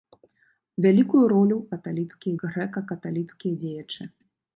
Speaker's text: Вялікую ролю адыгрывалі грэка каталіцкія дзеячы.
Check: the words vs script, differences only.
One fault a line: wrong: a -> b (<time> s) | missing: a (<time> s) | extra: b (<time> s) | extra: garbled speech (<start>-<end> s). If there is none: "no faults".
wrong: адыгрывалі -> каталіцкія (1.7 s)